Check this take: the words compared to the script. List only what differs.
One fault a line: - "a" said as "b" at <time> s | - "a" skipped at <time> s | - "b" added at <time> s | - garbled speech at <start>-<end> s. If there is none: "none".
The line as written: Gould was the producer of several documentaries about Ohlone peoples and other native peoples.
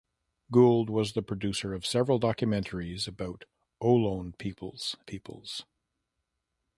- "and other native" skipped at 5.0 s